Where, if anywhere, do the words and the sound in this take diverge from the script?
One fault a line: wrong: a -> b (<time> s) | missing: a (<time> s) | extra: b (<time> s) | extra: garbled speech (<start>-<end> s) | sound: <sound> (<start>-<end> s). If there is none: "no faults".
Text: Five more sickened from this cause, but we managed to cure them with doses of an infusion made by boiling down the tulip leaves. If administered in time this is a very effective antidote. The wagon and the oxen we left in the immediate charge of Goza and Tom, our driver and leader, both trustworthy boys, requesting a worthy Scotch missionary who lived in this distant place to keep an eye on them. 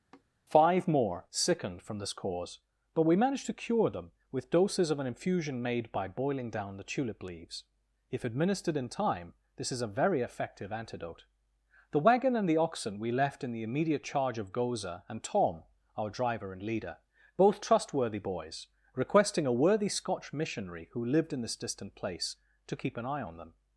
sound: sigh (0.1-0.2 s)